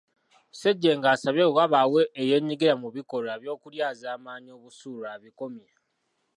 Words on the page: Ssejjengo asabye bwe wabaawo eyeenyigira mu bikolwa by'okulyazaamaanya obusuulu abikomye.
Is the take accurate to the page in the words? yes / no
yes